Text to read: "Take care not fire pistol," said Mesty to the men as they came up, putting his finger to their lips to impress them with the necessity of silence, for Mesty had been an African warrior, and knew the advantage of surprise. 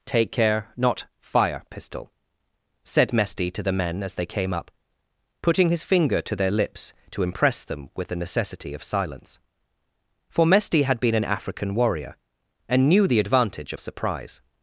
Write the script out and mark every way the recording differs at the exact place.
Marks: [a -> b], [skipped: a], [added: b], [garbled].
"Take care not fire pistol," said Mesty to the men as they came up, putting his finger to their lips to impress them with the necessity of silence, for Mesty had been an African warrior, and knew the advantage of surprise.